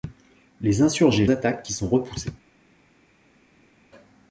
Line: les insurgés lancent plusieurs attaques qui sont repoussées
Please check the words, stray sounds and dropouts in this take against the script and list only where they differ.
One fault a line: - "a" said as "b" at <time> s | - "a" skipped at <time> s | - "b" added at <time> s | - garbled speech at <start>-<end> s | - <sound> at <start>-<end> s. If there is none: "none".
- "lancent plusieurs" skipped at 1.3 s